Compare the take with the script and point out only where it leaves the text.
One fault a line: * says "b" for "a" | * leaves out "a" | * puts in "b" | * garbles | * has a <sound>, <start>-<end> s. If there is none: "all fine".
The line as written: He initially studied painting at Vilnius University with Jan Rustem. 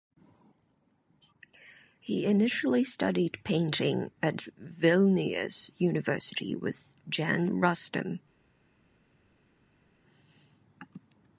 all fine